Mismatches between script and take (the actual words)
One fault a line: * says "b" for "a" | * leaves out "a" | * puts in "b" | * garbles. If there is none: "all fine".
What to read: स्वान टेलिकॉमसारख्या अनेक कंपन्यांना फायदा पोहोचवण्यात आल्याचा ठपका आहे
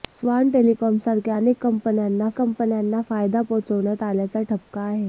* puts in "कंपन्यांना"